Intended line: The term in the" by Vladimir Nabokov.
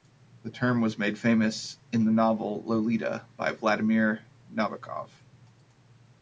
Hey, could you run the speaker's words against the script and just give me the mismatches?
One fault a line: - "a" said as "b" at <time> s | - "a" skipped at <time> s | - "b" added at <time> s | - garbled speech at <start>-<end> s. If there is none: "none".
- "was made famous" added at 0.8 s
- "novel Lolita" added at 2.1 s